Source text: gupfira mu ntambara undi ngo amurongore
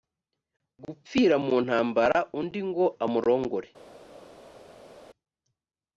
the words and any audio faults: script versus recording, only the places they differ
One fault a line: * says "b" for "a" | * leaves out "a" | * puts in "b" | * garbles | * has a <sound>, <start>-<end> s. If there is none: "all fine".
all fine